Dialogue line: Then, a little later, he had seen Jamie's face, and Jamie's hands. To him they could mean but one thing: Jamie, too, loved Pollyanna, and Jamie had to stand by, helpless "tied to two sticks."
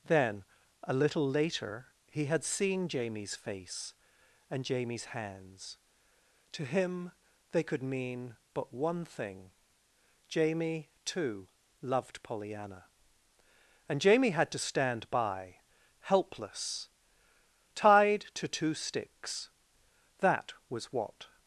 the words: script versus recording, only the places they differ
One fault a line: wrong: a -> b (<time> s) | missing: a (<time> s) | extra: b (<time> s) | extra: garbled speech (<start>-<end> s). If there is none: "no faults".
extra: That was what (20.2 s)